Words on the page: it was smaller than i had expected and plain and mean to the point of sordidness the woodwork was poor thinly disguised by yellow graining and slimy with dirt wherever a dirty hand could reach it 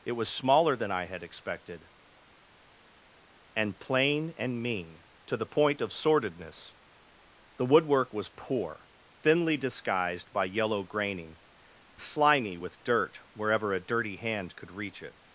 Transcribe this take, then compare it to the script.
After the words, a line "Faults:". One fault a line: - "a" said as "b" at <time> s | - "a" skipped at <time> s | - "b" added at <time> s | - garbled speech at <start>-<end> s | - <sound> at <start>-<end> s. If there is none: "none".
it was smaller than i had expected and plain and mean to the point of sordidness the woodwork was poor thinly disguised by yellow graining slimy with dirt wherever a dirty hand could reach it
Faults:
- "and" skipped at 11.4 s